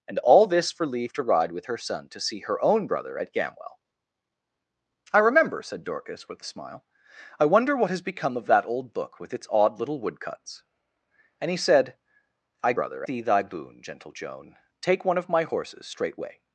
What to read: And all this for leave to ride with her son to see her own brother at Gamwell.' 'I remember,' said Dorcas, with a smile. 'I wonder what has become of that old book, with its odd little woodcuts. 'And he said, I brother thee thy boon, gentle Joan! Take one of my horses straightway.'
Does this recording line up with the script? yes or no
yes